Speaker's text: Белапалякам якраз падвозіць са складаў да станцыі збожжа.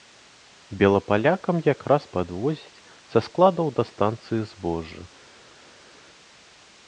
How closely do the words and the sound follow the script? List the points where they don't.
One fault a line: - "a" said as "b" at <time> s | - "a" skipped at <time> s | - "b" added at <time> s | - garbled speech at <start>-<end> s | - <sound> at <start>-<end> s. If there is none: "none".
none